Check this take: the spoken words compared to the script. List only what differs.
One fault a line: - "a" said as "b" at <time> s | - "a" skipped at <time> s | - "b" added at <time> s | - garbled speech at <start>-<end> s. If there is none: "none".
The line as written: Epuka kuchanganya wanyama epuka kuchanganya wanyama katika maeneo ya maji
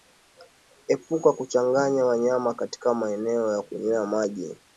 - "epuka kuchanganya wanyama" skipped at 2.5 s
- "kunywea" added at 3.6 s